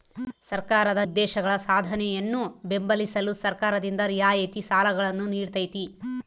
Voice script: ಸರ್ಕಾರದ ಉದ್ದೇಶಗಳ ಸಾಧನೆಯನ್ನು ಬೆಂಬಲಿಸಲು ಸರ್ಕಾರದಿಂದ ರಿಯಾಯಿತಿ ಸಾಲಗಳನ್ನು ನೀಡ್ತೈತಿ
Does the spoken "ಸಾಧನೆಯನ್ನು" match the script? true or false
true